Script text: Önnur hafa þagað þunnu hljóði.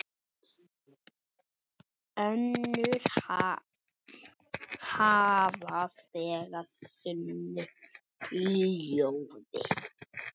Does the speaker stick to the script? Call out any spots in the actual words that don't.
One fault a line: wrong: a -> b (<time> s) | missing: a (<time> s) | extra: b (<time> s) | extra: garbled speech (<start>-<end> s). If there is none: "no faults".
no faults